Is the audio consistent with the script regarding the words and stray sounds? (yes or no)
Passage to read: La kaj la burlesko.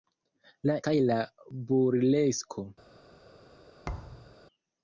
no